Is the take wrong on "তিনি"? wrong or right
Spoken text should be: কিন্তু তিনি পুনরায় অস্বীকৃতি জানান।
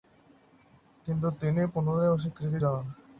right